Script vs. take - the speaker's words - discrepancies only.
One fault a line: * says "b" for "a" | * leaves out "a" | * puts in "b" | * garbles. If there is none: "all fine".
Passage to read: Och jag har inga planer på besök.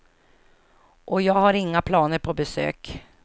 all fine